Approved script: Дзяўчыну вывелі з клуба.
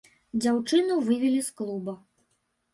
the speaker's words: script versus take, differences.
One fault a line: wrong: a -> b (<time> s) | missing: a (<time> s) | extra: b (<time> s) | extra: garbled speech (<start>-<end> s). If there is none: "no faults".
no faults